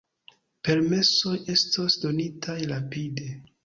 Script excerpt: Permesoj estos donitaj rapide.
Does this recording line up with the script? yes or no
yes